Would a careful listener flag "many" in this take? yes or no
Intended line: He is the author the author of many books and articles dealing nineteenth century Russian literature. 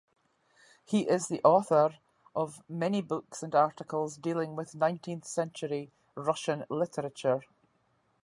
no